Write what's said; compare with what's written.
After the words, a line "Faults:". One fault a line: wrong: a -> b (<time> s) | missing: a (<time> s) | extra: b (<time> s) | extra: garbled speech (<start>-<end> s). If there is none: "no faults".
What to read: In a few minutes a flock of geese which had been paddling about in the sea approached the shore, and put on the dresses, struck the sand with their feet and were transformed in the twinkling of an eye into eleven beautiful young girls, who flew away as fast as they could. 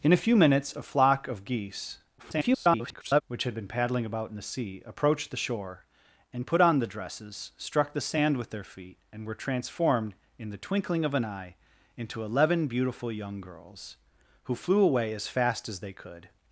In a few minutes a flock of geese [garbled] which had been paddling about in the sea approached the shore, and put on the dresses, struck the sand with their feet and were transformed in the twinkling of an eye into eleven beautiful young girls, who flew away as fast as they could.
Faults:
extra: garbled speech (2.2-3.2 s)